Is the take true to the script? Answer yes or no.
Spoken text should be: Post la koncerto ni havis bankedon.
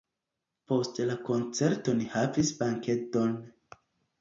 yes